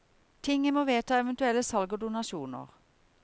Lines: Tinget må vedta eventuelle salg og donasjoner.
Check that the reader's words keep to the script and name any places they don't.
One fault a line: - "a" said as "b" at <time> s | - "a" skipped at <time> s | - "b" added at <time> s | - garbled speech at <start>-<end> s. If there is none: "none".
none